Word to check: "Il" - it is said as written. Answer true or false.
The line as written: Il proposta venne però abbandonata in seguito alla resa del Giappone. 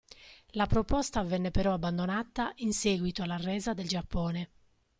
false